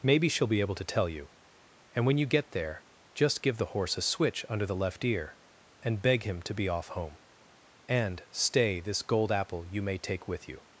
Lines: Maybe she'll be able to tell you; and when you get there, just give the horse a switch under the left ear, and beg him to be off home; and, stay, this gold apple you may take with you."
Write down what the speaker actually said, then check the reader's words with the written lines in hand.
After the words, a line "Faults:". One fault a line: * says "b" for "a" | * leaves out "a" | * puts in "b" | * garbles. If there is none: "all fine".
Maybe she'll be able to tell you; and when you get there, just give the horse a switch under the left ear, and beg him to be off home; and, stay, this gold apple you may take with you."
Faults:
all fine